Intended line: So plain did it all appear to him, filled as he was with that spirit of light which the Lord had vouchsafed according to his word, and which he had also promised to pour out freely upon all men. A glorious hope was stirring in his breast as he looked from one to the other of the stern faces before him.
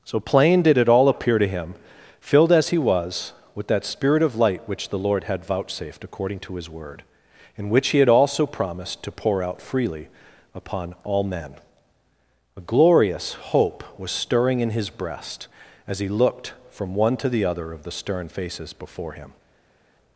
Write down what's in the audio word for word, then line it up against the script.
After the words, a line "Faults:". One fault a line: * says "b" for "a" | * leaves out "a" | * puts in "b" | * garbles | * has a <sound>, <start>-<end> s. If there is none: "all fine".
So plain did it all appear to him, filled as he was with that spirit of light which the Lord had vouchsafed according to his word, and which he had also promised to pour out freely upon all men. A glorious hope was stirring in his breast as he looked from one to the other of the stern faces before him.
Faults:
all fine